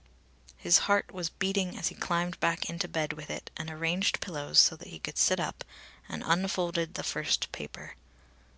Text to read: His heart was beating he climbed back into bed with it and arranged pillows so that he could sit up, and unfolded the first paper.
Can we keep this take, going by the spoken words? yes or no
no